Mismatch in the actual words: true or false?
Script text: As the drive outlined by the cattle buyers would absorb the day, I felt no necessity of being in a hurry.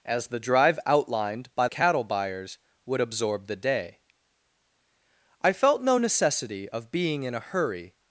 true